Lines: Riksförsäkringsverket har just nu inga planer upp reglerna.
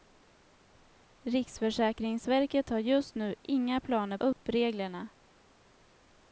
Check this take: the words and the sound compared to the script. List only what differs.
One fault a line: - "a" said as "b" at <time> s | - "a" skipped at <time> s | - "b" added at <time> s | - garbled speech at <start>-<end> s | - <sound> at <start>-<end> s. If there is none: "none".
- dropout at 4.3-4.4 s